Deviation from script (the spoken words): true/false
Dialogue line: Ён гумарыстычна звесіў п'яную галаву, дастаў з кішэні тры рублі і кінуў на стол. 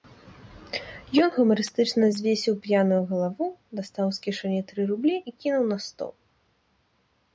false